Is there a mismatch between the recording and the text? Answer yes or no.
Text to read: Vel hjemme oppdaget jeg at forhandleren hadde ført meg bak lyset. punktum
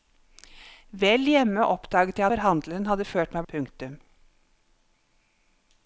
yes